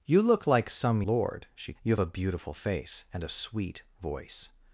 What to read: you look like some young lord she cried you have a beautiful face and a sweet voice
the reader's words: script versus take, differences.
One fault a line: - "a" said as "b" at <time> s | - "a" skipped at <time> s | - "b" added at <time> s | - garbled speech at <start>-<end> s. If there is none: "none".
- "young" skipped at 1.0 s
- "cried" skipped at 1.7 s